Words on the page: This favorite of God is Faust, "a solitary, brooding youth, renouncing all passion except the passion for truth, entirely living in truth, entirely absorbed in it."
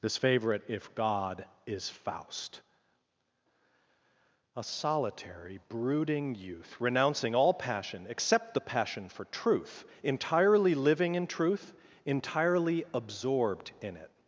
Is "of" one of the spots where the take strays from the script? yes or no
yes